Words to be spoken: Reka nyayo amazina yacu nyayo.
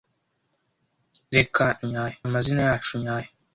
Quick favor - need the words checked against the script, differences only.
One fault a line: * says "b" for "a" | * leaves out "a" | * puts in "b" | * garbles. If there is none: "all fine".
all fine